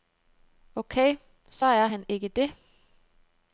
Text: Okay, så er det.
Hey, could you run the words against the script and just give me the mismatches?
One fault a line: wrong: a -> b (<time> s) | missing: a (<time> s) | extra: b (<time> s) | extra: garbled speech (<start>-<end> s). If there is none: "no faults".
extra: han ikke (1.8 s)